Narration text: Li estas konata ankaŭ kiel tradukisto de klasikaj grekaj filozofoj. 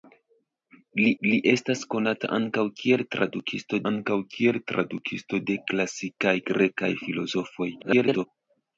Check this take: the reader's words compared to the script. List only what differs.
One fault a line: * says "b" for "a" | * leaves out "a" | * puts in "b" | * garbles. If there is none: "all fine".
* puts in "li"
* puts in "ankaŭ kiel tradukisto"
* garbles